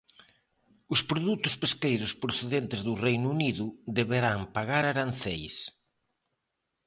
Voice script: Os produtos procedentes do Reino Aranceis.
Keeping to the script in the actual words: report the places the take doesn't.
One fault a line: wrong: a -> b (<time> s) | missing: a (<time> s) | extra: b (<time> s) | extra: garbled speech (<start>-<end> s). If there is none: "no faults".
extra: pesqueiros (1.6 s)
extra: Unido deberán pagar (3.4 s)